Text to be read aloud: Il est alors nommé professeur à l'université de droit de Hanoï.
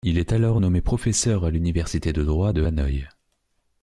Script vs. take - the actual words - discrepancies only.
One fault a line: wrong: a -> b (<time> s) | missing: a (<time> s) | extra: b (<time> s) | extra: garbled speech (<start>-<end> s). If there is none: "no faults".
no faults